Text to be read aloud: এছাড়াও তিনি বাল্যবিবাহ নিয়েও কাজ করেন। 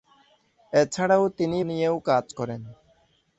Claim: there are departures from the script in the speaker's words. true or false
true